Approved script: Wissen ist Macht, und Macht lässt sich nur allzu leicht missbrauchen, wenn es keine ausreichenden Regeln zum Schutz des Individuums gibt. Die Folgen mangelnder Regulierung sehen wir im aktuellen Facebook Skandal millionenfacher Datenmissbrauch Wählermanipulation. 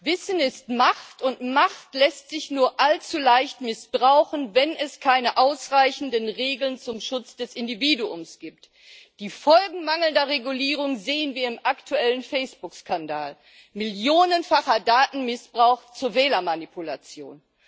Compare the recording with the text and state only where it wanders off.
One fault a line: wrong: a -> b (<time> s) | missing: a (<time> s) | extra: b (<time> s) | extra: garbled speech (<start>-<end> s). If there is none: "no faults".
extra: zur (15.9 s)